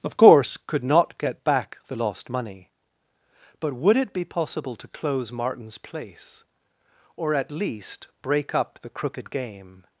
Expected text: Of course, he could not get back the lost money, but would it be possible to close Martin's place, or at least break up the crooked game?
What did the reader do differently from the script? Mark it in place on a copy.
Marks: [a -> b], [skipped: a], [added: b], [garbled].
Of course, [skipped: he] could not get back the lost money, but would it be possible to close Martin's place, or at least break up the crooked game?